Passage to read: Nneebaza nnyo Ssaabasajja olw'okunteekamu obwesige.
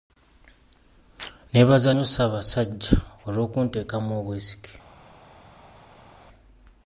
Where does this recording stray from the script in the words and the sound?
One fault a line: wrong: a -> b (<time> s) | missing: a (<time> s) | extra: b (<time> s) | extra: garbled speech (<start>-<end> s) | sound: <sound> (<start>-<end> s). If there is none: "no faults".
no faults